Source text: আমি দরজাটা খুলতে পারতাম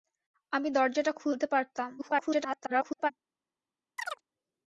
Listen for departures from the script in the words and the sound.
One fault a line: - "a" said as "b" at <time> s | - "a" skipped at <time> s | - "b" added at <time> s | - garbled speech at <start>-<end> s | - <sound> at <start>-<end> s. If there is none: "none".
- garbled speech at 2.0-3.1 s
- chirp at 4.0-4.2 s